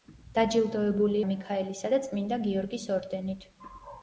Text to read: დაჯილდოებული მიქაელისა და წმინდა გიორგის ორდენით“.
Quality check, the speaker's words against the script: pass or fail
pass